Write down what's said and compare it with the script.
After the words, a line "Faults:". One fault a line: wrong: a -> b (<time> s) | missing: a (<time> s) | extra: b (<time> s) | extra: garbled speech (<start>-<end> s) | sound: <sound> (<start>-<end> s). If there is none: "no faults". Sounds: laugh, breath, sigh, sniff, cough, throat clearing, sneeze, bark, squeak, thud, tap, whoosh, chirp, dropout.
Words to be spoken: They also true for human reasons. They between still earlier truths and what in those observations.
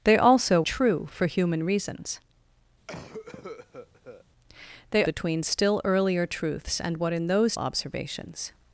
They also true for human reasons. They between still earlier truths and what in those observations.
Faults:
sound: cough (2.9-4.2 s)